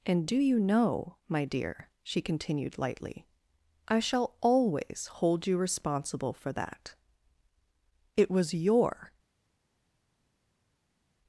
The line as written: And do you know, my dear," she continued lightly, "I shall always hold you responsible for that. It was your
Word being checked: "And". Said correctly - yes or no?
yes